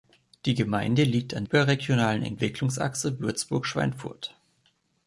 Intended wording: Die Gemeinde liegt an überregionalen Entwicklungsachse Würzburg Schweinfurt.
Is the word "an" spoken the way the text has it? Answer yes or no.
yes